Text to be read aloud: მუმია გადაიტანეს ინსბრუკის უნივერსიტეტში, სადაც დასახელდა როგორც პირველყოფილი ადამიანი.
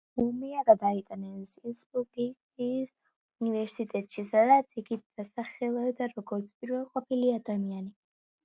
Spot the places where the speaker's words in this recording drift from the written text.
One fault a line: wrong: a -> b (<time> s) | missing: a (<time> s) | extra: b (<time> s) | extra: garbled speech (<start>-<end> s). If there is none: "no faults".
extra: იგი (4.8 s)